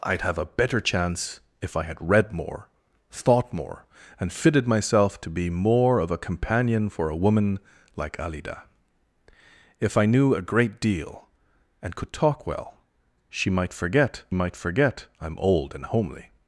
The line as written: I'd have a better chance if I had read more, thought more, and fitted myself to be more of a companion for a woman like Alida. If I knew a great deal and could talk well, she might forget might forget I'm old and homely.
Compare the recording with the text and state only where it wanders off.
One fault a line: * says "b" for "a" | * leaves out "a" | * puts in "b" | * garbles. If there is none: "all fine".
all fine